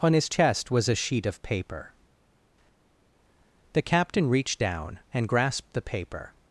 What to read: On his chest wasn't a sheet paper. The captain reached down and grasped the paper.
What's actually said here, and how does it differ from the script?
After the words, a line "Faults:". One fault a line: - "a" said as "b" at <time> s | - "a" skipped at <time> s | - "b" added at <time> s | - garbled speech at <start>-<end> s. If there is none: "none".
On his chest was a sheet of paper. The captain reached down and grasped the paper.
Faults:
- "wasn't" said as "was" at 0.7 s
- "of" added at 1.3 s